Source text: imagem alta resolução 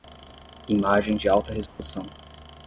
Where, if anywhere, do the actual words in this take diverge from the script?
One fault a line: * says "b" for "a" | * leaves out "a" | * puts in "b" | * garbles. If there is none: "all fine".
* puts in "de"